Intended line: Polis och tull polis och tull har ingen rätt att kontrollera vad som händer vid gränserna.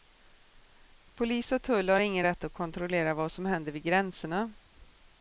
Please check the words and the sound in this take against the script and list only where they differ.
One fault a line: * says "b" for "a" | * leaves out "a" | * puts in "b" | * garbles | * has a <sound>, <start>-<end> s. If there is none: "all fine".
* leaves out "polis och tull"